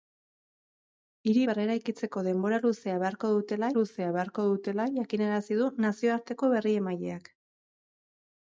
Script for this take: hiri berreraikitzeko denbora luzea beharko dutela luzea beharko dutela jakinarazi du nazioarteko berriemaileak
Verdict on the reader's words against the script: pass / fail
pass